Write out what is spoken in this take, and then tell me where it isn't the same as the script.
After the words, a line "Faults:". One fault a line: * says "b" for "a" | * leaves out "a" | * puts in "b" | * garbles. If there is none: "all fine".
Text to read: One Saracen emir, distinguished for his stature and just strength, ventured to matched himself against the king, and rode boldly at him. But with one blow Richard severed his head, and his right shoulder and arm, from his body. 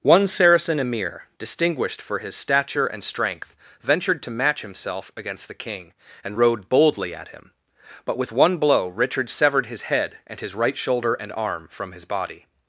One Saracen emir, distinguished for his stature and strength, ventured to match himself against the king, and rode boldly at him. But with one blow Richard severed his head, and his right shoulder and arm, from his body.
Faults:
* leaves out "just"
* says "match" for "matched"